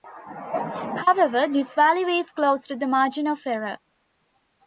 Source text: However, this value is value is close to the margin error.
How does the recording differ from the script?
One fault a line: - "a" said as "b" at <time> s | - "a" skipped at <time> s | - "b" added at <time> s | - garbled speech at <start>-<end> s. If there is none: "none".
- "value is" skipped at 2.3 s
- "of" added at 3.3 s